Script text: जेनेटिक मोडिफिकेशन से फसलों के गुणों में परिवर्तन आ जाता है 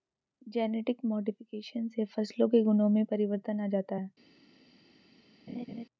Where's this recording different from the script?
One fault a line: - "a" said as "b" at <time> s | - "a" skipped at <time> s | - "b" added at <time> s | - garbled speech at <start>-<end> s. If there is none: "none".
none